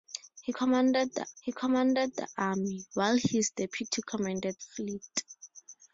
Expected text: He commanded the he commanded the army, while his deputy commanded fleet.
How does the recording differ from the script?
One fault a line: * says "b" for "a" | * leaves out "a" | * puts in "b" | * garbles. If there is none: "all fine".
all fine